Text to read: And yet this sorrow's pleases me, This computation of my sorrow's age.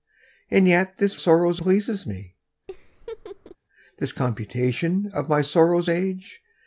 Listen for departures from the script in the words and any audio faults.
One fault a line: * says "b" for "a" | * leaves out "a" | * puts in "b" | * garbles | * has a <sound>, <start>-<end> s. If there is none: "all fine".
* has a laugh, 2.7-3.6 s